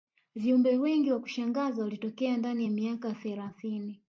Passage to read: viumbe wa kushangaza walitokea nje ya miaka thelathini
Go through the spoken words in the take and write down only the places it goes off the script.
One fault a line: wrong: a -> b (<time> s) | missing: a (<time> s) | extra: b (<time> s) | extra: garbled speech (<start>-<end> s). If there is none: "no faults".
extra: wengi (0.8 s)
wrong: nje -> ndani (2.4 s)